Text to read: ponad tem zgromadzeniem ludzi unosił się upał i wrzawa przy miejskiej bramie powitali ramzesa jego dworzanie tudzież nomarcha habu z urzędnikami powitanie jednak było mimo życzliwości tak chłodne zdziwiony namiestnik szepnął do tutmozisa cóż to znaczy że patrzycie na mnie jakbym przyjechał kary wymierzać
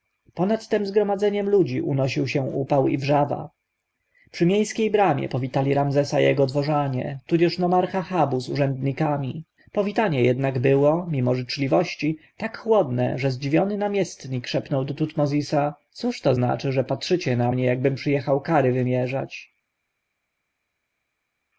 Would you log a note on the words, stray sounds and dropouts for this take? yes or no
yes